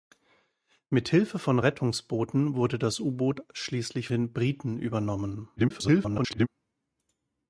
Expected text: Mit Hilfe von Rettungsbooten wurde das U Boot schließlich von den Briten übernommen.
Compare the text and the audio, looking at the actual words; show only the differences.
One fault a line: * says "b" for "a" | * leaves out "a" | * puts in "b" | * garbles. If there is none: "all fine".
* leaves out "von"
* garbles